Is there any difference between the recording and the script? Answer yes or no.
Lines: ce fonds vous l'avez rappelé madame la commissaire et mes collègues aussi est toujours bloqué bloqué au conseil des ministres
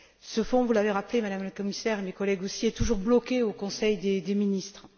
yes